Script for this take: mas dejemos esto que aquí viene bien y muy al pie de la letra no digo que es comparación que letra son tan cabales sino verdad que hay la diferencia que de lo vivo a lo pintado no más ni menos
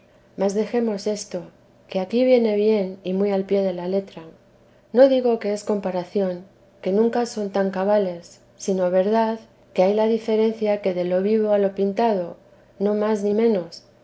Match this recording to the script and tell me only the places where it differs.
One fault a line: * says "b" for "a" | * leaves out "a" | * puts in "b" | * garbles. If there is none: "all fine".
* says "nunca" for "letra"